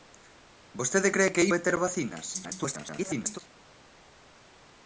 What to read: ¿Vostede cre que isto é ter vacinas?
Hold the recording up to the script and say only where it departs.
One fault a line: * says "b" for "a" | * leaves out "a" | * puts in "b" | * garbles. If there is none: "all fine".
* leaves out "isto"
* garbles